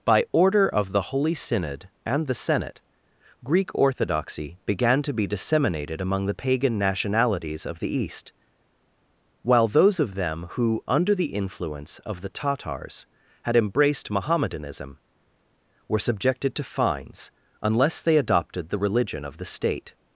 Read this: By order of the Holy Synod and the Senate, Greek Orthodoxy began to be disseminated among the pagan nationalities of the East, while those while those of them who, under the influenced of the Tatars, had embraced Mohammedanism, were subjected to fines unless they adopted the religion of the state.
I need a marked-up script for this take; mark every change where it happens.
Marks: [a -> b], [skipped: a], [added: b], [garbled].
By order of the Holy Synod and the Senate, Greek Orthodoxy began to be disseminated among the pagan nationalities of the East, while those [skipped: while those] of them who, under the [influenced -> influence] of the Tatars, had embraced Mohammedanism, were subjected to fines unless they adopted the religion of the state.